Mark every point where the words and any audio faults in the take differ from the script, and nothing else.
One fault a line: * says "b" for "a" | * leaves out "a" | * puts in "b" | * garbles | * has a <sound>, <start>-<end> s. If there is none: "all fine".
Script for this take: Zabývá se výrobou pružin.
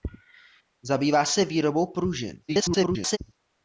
* garbles